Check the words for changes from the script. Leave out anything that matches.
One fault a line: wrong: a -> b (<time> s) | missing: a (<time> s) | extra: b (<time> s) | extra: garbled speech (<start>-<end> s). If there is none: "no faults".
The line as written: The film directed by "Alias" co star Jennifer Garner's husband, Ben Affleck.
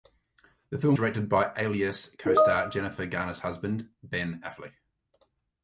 no faults